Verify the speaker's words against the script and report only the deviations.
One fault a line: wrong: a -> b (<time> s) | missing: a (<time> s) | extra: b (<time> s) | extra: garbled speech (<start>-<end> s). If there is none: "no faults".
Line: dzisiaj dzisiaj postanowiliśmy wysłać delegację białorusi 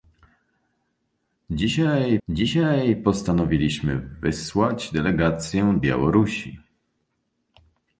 no faults